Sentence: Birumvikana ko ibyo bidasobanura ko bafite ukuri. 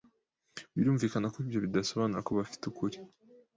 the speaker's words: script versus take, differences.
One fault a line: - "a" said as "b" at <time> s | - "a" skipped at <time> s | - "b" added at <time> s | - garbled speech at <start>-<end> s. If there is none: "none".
none